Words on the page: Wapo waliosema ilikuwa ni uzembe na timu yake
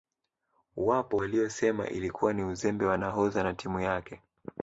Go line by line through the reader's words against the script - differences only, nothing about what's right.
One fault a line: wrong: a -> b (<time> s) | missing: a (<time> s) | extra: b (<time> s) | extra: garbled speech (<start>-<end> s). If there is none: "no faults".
extra: wa nahodha (2.8 s)